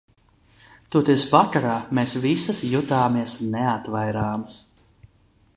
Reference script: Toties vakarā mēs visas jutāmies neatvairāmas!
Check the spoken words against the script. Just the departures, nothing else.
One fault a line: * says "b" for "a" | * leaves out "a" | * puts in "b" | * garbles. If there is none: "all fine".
all fine